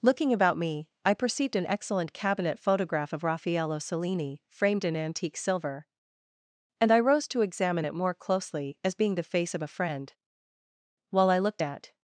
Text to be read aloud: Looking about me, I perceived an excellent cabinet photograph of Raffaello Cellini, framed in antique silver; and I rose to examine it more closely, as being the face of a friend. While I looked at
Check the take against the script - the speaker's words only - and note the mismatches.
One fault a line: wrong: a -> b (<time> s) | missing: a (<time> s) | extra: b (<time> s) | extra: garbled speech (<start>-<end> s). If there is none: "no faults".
no faults